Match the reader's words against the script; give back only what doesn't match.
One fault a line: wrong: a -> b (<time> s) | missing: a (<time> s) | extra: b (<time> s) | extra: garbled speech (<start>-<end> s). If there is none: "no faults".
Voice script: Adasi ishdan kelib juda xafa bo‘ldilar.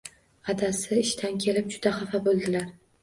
no faults